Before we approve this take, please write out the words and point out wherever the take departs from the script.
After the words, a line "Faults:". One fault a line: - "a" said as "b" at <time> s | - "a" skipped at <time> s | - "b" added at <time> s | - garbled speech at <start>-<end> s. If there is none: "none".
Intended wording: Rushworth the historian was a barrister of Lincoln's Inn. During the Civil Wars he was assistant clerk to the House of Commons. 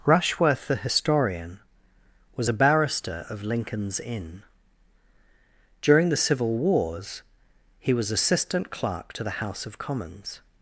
Rushworth the historian was a barrister of Lincoln's Inn. During the Civil Wars he was assistant clerk to the House of Commons.
Faults:
none